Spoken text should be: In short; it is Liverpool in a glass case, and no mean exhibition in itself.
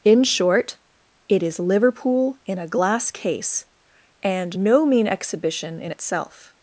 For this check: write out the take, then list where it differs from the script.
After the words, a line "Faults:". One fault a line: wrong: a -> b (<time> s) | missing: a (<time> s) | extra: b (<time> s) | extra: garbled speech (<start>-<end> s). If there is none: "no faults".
In short; it is Liverpool in a glass case, and no mean exhibition in itself.
Faults:
no faults